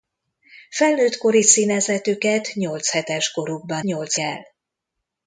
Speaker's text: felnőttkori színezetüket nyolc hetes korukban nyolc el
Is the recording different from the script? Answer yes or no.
no